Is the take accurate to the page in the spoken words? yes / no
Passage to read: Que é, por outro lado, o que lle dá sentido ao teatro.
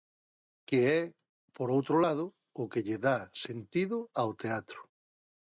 yes